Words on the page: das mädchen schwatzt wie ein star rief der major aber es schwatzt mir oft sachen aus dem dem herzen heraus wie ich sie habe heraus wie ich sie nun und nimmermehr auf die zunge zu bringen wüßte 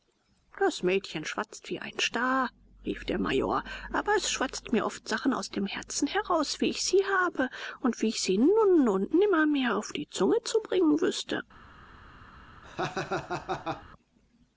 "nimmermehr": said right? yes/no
yes